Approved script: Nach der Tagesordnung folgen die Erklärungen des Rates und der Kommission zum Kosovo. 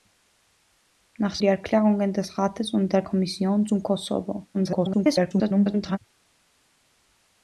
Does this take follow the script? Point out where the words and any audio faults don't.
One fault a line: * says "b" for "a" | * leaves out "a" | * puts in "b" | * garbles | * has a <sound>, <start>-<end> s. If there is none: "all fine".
* leaves out "der Tagesordnung folgen"
* garbles